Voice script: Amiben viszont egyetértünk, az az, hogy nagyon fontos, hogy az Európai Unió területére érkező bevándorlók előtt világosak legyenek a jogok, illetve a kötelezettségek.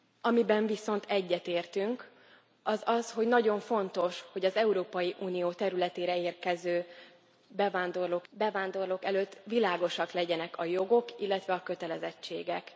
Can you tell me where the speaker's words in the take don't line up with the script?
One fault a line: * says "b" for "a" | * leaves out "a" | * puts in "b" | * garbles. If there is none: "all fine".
* puts in "bevándorlók"